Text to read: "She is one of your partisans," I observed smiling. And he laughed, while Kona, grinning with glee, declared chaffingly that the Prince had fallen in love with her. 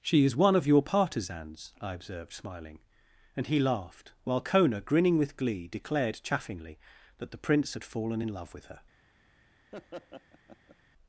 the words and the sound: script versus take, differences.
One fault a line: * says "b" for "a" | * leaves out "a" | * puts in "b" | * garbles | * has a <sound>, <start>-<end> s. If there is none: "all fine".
* has a laugh, 9.7-10.8 s